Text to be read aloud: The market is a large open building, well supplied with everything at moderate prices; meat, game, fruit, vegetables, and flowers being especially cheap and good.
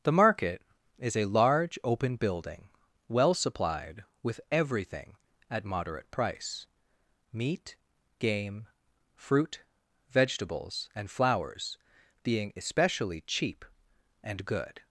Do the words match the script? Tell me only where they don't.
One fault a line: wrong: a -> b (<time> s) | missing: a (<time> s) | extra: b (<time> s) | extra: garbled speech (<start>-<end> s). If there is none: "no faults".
wrong: prices -> price (6.1 s)